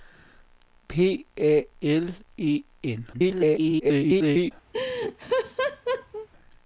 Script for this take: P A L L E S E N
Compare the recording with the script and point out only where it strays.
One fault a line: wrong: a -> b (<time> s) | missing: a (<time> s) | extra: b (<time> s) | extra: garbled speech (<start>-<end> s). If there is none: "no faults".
missing: L E S (2.1 s)
extra: garbled speech (3.1-4.5 s)